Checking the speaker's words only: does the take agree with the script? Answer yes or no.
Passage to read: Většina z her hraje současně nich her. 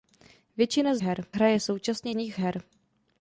yes